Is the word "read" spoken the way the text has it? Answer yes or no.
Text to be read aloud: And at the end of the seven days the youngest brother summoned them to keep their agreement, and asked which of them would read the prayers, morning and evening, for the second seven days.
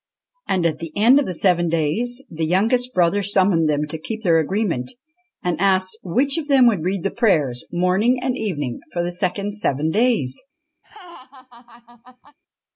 yes